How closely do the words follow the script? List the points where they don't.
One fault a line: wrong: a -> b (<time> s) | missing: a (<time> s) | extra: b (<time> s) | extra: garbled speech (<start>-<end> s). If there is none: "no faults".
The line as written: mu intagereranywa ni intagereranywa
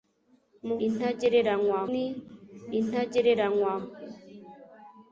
no faults